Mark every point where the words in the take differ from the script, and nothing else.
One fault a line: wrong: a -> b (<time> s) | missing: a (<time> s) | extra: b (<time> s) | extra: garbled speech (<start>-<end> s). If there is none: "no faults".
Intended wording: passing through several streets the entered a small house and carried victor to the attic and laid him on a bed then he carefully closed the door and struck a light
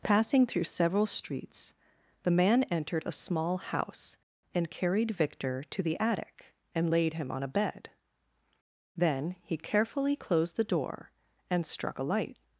extra: man (2.3 s)